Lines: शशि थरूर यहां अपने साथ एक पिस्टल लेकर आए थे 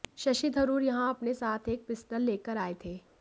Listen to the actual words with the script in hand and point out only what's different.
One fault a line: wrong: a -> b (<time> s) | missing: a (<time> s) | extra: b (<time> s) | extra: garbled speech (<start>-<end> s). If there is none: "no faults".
no faults